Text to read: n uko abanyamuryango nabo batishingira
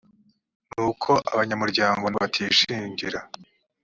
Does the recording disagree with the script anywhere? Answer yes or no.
yes